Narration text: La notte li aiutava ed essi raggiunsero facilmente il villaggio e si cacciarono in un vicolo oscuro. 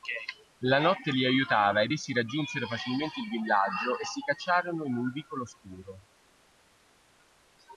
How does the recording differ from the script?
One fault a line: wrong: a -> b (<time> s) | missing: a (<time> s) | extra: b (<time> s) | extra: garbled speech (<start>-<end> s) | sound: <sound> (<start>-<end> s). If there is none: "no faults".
no faults